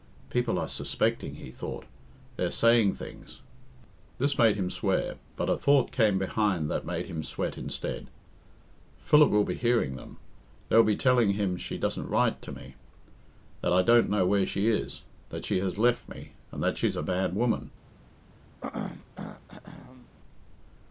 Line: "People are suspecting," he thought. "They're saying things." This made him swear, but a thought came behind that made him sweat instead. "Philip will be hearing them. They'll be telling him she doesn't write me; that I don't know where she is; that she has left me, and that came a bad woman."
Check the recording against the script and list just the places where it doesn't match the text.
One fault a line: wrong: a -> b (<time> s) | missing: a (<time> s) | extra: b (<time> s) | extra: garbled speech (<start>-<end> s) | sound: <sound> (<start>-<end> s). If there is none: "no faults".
extra: to (12.4 s)
wrong: came -> she's (16.8 s)
sound: throat clearing (18.6-20.1 s)